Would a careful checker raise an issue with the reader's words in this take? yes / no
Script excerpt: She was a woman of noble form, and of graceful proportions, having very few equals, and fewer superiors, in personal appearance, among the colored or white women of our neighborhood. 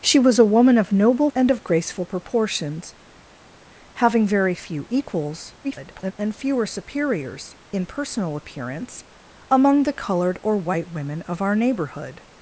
yes